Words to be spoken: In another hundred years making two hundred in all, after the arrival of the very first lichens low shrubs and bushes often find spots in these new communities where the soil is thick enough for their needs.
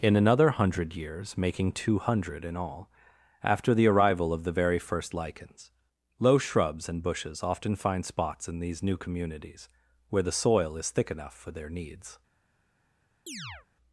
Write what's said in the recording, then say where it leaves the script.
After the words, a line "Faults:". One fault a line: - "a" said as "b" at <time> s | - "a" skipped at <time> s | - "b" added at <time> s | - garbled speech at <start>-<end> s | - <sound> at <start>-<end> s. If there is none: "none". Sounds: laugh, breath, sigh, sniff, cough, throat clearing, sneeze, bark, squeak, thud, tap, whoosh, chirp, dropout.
In another hundred years making two hundred in all, after the arrival of the very first lichens low shrubs and bushes often find spots in these new communities where the soil is thick enough for their needs.
Faults:
- chirp at 13.3-13.7 s